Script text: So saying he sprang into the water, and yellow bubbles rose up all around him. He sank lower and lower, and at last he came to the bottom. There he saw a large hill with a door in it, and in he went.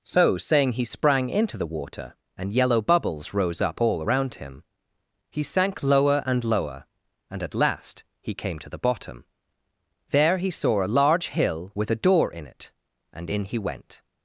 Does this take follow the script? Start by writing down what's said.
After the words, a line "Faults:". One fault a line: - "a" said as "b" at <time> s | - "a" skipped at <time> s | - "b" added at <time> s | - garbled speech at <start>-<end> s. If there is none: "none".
So saying he sprang into the water, and yellow bubbles rose up all around him. He sank lower and lower, and at last he came to the bottom. There he saw a large hill with a door in it, and in he went.
Faults:
none